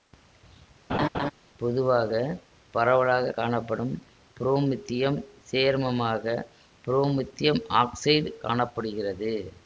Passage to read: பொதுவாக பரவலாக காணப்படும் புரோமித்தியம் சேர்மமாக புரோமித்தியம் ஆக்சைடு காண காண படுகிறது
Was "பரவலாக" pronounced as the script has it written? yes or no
yes